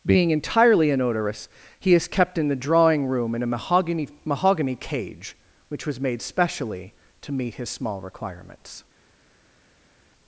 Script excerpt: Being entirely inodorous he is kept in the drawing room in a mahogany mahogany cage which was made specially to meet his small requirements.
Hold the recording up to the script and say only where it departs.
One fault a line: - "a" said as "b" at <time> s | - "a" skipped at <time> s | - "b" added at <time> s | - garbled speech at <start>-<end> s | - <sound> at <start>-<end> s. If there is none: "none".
none